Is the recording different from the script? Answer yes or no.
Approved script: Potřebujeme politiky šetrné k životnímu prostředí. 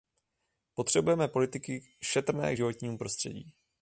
no